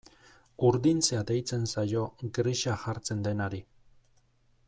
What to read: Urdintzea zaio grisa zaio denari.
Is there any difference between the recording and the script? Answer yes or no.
yes